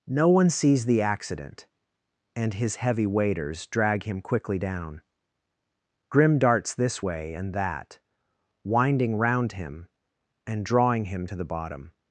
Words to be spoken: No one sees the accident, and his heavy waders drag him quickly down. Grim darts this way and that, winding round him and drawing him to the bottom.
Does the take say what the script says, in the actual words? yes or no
yes